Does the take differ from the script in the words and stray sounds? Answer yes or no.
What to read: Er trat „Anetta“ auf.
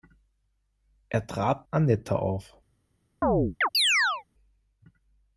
yes